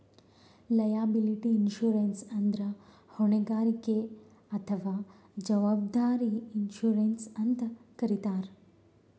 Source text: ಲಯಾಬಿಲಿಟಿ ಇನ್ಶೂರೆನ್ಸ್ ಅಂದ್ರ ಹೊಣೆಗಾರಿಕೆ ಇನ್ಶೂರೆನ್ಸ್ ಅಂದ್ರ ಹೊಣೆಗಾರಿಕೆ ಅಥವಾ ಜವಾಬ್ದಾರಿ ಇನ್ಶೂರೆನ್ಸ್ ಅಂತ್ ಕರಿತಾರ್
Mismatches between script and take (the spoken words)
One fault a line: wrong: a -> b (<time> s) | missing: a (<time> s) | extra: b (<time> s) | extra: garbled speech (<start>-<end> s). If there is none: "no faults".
missing: ಇನ್ಶೂರೆನ್ಸ್ ಅಂದ್ರ ಹೊಣೆಗಾರಿಕೆ (4.0 s)